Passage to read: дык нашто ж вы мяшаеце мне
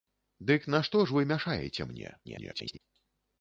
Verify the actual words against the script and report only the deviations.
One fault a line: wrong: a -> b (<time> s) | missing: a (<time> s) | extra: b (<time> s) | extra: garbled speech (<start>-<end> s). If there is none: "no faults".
extra: garbled speech (2.2-2.8 s)